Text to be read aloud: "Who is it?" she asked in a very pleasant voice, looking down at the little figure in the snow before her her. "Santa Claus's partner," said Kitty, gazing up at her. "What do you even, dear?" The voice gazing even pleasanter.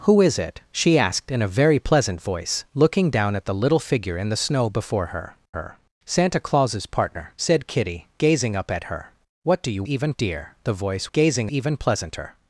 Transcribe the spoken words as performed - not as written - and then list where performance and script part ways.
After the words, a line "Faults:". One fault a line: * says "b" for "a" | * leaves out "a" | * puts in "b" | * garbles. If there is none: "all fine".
"Who is it?" she asked in a very pleasant voice, looking down at the little figure in the snow before her her. "Santa Claus's partner," said Kitty, gazing up at her. "What do you even, dear?" The voice gazing even pleasanter.
Faults:
all fine